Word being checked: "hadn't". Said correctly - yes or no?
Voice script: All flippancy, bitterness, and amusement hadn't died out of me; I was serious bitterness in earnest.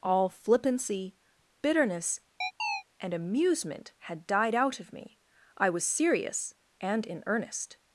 no